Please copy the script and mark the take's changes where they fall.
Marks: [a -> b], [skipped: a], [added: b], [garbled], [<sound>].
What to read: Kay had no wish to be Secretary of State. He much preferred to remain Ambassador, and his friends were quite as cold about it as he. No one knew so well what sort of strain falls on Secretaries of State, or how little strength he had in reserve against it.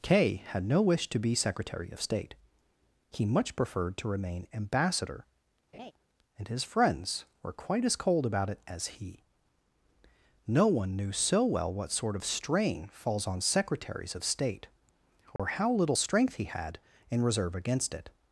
Kay had no wish to be Secretary of State. He much preferred to remain Ambassador, [laugh] and his friends were quite as cold about it as he. No one knew so well what sort of strain falls on Secretaries of State, or [dropout] how little strength he had in reserve against it.